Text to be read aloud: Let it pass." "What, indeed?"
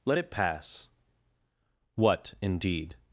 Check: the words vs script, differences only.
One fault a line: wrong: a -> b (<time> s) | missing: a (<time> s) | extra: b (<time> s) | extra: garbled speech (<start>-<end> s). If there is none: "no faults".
no faults